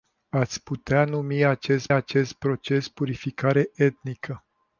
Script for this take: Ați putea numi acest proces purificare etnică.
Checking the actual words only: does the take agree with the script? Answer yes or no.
no